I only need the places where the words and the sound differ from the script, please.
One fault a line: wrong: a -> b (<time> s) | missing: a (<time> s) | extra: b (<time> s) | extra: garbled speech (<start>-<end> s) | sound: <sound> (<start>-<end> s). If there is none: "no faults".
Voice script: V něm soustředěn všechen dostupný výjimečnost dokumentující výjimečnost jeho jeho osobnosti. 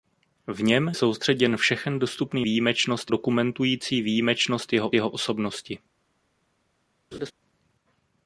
sound: laugh (7.1-7.3 s)